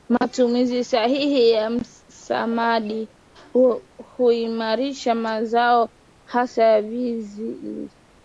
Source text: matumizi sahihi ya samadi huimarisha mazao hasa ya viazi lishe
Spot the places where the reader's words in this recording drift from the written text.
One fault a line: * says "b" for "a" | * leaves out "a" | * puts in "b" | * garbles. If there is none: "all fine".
all fine